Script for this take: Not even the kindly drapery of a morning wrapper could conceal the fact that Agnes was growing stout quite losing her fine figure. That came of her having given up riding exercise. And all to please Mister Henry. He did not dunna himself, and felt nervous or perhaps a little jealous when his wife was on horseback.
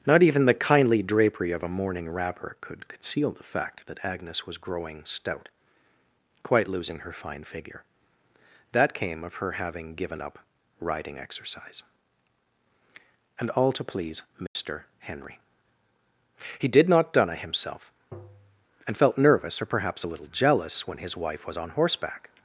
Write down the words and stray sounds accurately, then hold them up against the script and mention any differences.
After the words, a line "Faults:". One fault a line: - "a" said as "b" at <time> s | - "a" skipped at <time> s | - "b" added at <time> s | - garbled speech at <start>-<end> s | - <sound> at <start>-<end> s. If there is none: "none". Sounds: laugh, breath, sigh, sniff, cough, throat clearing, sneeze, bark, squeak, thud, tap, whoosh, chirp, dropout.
Not even the kindly drapery of a morning wrapper could conceal the fact that Agnes was growing stout quite losing her fine figure. That came of her having given up riding exercise. And all to please Mister Henry. He did not dunna himself, and felt nervous or perhaps a little jealous when his wife was on horseback.
Faults:
- dropout at 14.5-14.6 s
- tap at 18.1-18.7 s